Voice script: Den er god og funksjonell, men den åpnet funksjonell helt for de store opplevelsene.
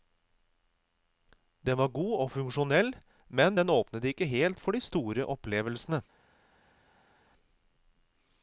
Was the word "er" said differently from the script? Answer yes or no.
yes